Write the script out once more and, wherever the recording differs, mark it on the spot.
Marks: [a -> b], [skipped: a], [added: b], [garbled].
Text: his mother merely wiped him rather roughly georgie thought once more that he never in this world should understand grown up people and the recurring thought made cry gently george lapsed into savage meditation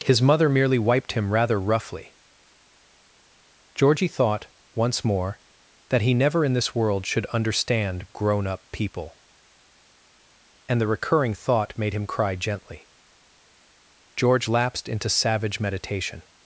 his mother merely wiped him rather roughly georgie thought once more that he never in this world should understand grown up people and the recurring thought made [added: him] cry gently george lapsed into savage meditation